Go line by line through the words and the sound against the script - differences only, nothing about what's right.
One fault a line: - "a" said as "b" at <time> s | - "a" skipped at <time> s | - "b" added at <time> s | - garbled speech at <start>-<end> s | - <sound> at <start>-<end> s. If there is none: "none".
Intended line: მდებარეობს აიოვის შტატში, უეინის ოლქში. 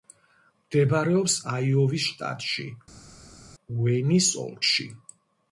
none